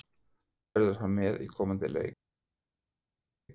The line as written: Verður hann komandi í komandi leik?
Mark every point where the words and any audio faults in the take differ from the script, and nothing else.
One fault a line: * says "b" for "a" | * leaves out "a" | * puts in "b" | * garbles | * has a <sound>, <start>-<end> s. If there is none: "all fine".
* says "með" for "komandi"